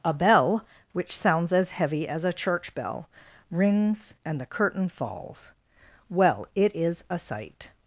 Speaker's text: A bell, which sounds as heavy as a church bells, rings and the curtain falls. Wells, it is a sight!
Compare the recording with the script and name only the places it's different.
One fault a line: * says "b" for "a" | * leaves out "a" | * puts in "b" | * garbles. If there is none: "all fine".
* says "bell" for "bells"
* says "Well" for "Wells"